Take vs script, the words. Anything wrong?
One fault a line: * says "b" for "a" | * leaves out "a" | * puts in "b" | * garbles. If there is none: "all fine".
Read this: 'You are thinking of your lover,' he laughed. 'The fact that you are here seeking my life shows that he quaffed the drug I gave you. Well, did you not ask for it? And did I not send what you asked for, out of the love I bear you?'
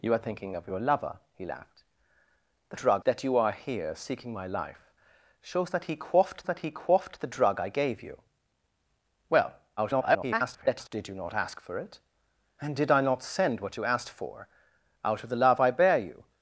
* says "drug" for "fact"
* puts in "that he quaffed"
* garbles